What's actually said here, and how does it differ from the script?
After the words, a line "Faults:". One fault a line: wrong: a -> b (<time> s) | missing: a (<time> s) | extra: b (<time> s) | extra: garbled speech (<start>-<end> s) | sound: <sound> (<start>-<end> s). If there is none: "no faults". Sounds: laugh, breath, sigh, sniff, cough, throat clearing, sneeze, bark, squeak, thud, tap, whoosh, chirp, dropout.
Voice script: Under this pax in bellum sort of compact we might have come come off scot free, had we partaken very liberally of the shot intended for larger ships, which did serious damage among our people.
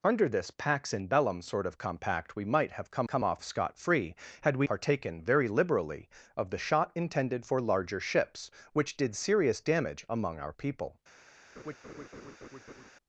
Under this pax in bellum sort of compact we might have come come off scot free, had we partaken very liberally of the shot intended for larger ships, which did serious damage among our people.
Faults:
sound: laugh (11.6-12.9 s)